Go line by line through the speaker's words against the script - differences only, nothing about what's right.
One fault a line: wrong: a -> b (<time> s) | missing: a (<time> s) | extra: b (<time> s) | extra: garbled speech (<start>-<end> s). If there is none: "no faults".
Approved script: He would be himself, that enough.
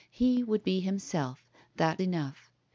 no faults